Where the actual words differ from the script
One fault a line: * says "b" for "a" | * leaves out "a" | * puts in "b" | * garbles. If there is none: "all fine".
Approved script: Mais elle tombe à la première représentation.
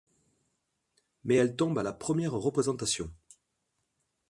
all fine